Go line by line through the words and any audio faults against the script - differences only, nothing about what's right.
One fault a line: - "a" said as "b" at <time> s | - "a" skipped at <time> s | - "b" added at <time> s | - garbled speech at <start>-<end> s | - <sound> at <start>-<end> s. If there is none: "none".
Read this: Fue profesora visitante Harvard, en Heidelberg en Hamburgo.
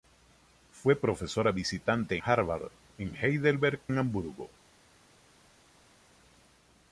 none